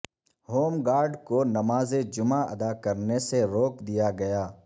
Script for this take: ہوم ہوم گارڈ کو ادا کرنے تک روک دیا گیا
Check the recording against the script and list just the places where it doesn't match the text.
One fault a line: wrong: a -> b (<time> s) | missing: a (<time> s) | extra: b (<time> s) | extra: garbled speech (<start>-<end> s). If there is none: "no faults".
missing: ہوم (0.7 s)
extra: نماز جمعہ (1.5 s)
wrong: تک -> سے (3.3 s)